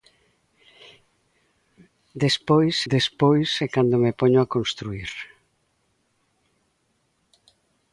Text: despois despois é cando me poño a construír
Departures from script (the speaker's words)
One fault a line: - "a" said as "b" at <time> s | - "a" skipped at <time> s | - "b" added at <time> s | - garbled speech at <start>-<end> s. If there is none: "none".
none